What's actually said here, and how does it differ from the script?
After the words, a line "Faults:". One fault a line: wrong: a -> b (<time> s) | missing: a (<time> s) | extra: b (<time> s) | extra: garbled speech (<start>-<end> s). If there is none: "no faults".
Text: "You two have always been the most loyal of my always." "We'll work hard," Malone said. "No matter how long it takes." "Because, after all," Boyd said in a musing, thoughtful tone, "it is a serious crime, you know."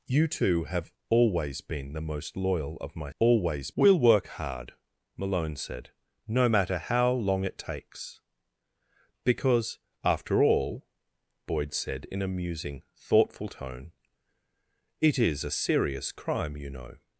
"You two have always been the most loyal of my always." "We'll work hard," Malone said. "No matter how long it takes." "Because, after all," Boyd said in a musing, thoughtful tone, "it is a serious crime, you know."
Faults:
no faults